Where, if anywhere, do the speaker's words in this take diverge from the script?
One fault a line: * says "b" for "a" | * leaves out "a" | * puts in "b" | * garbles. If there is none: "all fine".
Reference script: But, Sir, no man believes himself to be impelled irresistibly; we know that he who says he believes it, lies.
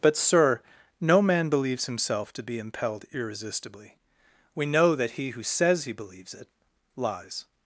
all fine